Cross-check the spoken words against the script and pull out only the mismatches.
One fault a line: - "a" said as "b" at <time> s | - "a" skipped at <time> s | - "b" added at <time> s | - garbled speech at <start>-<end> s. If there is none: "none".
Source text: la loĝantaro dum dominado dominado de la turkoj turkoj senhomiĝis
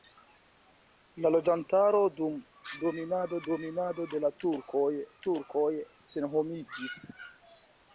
none